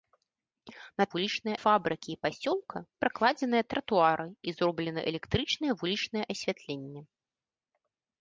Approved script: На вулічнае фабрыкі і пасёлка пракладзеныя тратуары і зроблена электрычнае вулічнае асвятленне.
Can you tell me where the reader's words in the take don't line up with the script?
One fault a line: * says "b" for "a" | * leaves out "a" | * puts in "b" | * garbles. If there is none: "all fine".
all fine